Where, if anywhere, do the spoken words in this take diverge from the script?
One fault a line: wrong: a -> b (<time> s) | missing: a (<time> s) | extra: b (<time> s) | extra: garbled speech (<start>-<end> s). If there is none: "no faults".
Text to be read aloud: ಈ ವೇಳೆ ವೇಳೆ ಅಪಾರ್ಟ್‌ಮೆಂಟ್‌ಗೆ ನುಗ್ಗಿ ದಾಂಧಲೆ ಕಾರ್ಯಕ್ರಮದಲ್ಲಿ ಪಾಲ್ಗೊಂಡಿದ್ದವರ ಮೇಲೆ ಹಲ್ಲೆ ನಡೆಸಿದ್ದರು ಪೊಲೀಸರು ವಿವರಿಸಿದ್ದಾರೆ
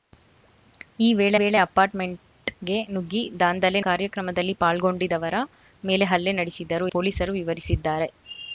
no faults